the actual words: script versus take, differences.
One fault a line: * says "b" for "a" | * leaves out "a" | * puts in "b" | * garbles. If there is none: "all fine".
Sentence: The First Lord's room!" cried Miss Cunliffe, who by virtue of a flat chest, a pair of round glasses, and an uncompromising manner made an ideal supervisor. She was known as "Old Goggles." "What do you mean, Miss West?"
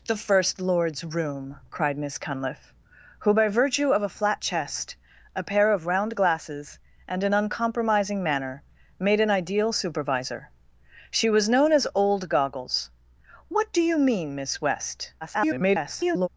* garbles